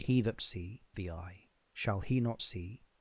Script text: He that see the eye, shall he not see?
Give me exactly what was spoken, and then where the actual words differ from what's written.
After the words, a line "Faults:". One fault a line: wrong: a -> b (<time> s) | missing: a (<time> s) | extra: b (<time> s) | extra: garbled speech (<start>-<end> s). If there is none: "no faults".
He that see the eye, shall he not see?
Faults:
no faults